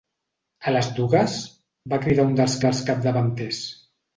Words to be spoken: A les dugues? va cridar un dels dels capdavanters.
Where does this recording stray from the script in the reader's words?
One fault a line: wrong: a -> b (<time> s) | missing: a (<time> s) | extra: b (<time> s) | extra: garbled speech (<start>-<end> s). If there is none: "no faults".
no faults